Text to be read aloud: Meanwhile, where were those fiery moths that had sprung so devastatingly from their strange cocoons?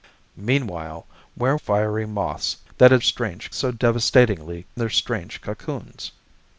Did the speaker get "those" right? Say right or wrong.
wrong